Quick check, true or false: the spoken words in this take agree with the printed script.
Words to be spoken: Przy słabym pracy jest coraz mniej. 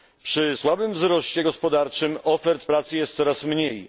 false